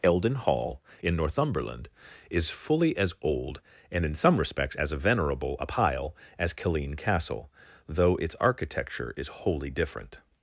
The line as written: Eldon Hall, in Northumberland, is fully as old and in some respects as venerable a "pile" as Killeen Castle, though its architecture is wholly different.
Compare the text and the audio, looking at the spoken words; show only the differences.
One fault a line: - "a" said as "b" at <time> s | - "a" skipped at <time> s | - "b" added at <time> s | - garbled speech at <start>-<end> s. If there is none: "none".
none